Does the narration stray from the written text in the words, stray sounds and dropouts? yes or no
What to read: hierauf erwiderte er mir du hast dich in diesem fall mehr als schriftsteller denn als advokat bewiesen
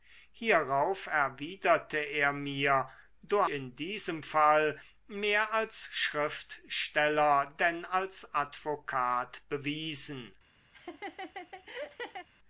yes